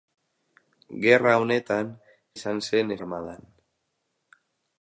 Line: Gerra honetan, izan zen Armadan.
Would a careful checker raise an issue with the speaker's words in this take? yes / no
no